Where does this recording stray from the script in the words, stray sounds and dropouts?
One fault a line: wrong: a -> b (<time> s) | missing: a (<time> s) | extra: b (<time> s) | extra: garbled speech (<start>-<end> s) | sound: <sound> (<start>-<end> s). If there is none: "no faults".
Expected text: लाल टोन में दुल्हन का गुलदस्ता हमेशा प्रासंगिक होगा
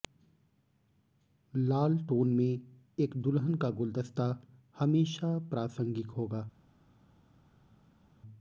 extra: एक (3.0 s)